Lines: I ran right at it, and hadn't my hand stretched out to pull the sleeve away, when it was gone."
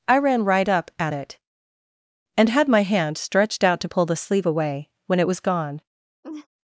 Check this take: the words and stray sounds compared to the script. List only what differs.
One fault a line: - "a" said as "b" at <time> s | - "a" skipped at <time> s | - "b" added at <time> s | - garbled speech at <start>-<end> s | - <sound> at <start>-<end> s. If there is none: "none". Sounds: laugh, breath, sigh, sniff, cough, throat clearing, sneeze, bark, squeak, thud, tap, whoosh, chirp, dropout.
- "up" added at 0.7 s
- "hadn't" said as "had" at 2.5 s
- laugh at 6.2-6.5 s